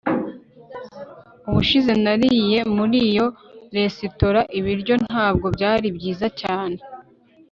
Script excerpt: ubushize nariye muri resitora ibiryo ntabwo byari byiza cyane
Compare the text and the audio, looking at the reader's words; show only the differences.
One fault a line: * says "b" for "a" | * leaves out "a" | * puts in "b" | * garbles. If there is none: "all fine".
* puts in "iyo"